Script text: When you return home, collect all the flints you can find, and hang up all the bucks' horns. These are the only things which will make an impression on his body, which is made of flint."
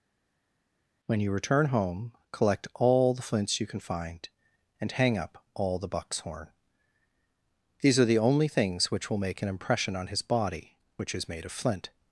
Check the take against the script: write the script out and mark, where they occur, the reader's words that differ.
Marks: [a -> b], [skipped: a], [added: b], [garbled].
When you return home, collect all the flints you can find, and hang up all the bucks' [horns. -> horn] These are the only things which will make an impression on his body, which is made of flint."